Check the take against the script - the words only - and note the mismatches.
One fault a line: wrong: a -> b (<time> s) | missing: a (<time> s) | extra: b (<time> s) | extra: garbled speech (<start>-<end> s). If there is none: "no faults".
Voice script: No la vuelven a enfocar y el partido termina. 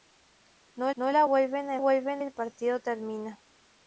extra: no (0.9 s)
wrong: enfocar -> vuelven (1.8 s)